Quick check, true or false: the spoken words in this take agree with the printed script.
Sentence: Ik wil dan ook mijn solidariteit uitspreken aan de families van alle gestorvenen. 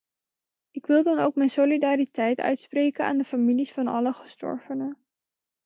true